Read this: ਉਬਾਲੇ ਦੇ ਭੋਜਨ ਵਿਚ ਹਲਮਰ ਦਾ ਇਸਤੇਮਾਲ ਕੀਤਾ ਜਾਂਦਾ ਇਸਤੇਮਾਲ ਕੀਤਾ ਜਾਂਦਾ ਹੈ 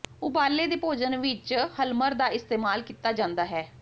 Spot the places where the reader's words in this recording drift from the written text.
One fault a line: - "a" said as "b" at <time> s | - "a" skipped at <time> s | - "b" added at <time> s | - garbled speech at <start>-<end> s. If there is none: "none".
- "ਇਸਤੇਮਾਲ ਕੀਤਾ ਜਾਂਦਾ" skipped at 3.5 s